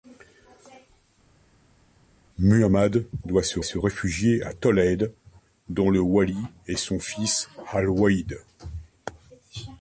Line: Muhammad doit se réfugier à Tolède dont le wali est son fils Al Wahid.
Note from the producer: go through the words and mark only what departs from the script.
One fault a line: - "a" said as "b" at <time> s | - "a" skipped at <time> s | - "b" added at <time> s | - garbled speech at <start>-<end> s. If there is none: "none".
- "se" added at 3.6 s